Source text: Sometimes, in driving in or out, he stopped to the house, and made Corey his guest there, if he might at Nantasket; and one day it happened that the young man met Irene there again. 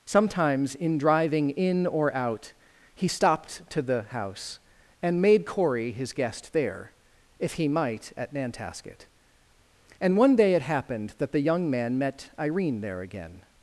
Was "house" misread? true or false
false